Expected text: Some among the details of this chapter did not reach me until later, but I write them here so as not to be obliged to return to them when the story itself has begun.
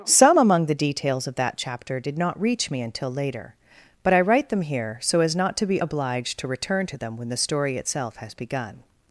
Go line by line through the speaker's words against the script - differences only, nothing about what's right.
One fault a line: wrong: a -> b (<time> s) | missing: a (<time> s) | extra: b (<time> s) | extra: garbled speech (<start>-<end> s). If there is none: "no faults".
wrong: this -> that (1.3 s)